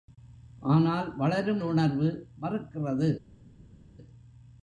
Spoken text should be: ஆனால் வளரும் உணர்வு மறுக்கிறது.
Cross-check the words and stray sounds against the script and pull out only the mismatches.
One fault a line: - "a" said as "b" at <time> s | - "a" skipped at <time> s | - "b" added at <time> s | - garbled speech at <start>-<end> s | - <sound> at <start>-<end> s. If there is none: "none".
none